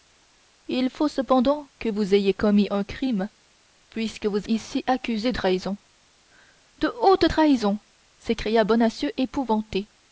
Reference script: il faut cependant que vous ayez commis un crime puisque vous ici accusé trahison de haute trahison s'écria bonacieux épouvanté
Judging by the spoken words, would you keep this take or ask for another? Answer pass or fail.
pass